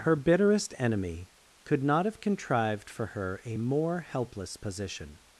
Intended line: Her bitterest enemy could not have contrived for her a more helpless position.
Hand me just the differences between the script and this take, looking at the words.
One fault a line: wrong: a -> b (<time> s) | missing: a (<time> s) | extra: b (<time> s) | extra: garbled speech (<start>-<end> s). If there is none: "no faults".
no faults